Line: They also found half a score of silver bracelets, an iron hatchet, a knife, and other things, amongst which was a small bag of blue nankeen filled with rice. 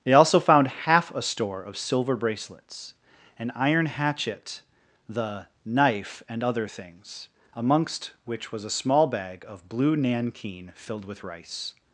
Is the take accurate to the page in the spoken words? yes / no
no